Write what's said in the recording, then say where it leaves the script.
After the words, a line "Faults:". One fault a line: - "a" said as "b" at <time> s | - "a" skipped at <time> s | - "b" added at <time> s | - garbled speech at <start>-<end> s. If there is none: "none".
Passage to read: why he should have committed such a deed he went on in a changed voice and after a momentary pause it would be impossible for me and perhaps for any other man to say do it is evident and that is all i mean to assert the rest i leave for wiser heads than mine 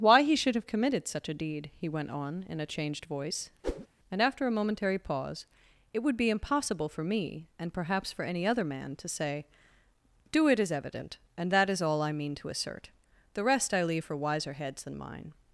why he should have committed such a deed he went on in a changed voice and after a momentary pause it would be impossible for me and perhaps for any other man to say do it is evident and that is all i mean to assert the rest i leave for wiser heads than mine
Faults:
none